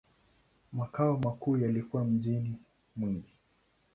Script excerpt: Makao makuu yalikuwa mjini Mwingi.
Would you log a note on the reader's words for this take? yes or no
no